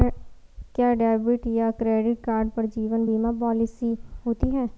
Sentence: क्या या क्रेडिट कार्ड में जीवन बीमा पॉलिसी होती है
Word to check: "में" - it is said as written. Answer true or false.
false